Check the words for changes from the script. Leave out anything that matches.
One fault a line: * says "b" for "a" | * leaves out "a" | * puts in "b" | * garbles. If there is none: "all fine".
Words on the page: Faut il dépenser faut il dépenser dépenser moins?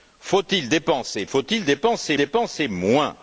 all fine